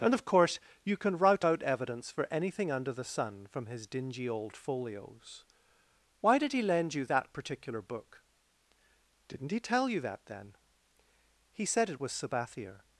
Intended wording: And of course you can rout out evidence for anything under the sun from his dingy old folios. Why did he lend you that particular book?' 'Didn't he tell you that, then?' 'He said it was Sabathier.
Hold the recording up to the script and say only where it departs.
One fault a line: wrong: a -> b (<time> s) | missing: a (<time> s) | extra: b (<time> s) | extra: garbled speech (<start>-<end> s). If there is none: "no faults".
no faults